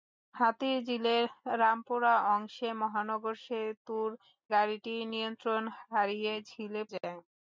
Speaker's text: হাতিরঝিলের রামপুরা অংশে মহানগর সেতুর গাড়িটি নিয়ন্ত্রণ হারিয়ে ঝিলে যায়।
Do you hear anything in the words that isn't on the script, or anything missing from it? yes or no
no